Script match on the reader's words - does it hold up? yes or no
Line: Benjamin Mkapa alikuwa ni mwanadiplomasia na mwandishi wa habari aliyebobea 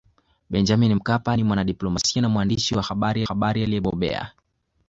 no